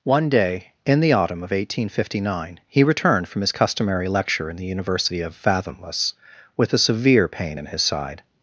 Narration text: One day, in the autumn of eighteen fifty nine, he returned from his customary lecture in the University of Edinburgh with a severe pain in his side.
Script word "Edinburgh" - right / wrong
wrong